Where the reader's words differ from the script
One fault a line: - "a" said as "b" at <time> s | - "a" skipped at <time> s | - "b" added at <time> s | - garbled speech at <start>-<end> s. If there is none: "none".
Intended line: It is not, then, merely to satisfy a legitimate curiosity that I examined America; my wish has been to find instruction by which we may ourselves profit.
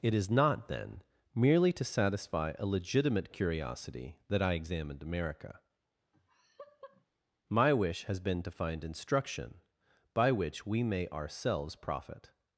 none